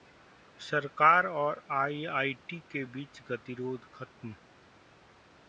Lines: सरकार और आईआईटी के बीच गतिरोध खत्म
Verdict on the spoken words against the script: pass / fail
pass